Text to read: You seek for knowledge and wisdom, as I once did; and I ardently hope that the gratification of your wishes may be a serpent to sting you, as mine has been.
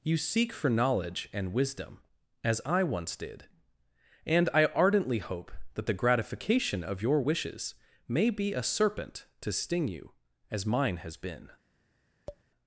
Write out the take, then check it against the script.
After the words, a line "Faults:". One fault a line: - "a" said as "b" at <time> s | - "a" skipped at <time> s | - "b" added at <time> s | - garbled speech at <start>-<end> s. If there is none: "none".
You seek for knowledge and wisdom, as I once did; and I ardently hope that the gratification of your wishes may be a serpent to sting you, as mine has been.
Faults:
none